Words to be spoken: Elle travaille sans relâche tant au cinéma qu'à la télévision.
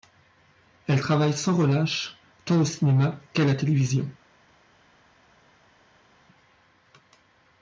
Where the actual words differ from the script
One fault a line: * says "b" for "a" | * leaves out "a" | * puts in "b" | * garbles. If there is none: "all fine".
all fine